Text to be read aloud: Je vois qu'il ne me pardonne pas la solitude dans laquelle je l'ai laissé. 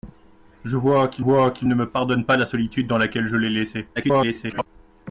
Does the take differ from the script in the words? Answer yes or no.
yes